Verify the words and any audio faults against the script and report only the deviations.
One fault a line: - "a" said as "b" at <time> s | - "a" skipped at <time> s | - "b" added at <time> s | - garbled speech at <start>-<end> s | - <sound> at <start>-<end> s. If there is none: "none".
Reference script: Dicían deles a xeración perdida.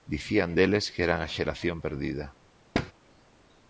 - "que eran" added at 0.9 s
- thud at 2.7-2.9 s